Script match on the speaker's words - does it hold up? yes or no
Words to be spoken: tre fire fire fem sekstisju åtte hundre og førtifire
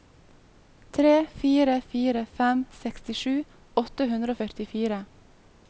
yes